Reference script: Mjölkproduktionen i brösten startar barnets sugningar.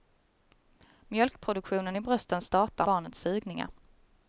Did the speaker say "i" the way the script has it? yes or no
yes